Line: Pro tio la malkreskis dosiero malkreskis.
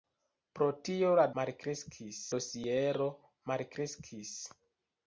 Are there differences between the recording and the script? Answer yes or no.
no